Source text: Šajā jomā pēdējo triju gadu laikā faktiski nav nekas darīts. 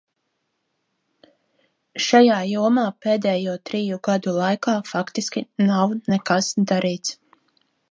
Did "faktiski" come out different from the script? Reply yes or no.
no